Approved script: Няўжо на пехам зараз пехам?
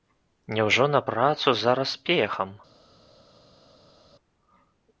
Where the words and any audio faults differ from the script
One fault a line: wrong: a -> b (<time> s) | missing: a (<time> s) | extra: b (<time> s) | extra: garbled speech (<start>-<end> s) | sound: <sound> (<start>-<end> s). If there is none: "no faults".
wrong: пехам -> працу (1.1 s)